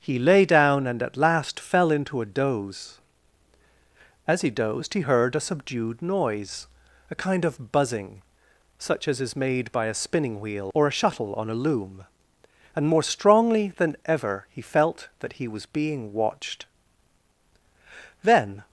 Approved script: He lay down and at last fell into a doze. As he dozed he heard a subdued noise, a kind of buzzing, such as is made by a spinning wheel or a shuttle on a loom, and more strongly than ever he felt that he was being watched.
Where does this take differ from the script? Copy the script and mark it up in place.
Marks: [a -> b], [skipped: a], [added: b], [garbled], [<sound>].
He lay down and at last fell into a doze. As he dozed he heard a subdued noise, a kind of buzzing, such as is made by a spinning wheel or a shuttle on a loom, and more strongly than ever he felt that he was being watched. [added: Then]